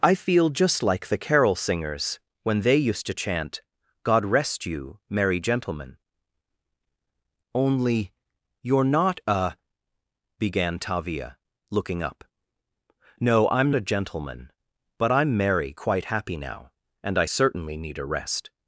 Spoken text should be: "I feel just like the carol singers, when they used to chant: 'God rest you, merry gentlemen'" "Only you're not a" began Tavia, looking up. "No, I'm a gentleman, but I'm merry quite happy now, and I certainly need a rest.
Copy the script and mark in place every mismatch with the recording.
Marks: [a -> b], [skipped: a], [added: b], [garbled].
"I feel just like the carol singers, when they used to chant: 'God rest you, merry gentlemen'" "Only you're not a" began Tavia, looking up. "No, I'm a gentleman, but I'm merry quite happy now, and I certainly need a rest.